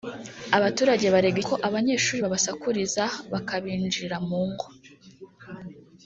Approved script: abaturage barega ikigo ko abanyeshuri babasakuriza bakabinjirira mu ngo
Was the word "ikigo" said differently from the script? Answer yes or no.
yes